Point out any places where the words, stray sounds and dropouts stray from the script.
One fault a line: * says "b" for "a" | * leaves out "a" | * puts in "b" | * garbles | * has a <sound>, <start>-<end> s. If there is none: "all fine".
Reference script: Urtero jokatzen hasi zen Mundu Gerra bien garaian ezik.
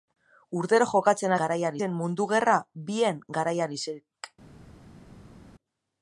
* says "garaian" for "hasi"